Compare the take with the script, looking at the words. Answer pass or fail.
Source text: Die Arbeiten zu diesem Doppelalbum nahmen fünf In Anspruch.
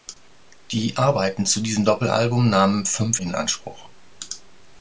pass